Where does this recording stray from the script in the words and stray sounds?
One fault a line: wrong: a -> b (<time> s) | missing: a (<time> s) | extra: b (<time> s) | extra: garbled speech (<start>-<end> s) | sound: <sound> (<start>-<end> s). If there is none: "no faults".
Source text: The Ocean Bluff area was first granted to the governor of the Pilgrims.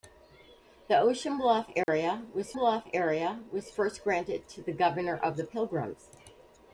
sound: dropout (1.8-1.9 s)
extra: Bluff area was (2.5 s)